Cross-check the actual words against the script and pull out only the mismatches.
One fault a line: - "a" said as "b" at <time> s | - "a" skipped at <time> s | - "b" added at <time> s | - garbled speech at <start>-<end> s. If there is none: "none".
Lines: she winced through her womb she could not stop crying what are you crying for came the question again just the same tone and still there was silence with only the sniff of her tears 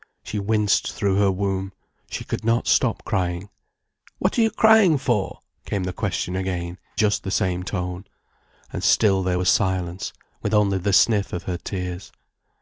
none